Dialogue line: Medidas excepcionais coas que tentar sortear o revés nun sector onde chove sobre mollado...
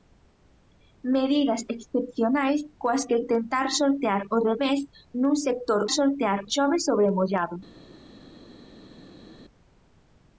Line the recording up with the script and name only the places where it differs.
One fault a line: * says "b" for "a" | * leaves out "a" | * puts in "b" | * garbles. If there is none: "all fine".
* says "sortear" for "onde"